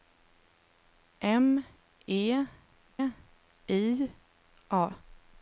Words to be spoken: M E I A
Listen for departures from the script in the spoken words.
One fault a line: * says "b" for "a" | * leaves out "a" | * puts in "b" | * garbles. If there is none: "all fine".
all fine